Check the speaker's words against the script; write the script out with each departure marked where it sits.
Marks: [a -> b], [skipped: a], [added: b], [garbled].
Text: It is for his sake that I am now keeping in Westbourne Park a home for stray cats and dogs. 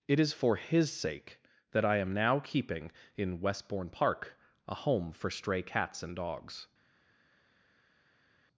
It is for his sake that I am now keeping in Westbourne Park a home for stray cats and dogs.